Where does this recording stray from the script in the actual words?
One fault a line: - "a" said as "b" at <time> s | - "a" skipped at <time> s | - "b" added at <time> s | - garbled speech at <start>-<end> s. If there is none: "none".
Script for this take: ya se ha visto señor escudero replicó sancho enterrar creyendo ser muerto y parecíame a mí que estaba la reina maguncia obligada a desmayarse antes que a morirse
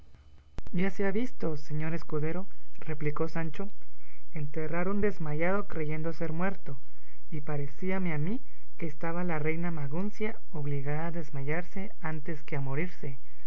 - "un desmayado" added at 4.9 s